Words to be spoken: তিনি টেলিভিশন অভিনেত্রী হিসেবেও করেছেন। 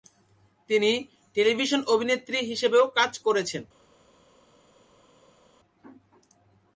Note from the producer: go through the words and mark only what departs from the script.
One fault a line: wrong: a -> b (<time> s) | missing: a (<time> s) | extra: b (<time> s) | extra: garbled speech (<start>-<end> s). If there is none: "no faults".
extra: কাজ (3.0 s)